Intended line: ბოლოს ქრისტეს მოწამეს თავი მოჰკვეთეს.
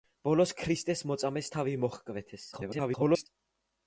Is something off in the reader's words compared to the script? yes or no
yes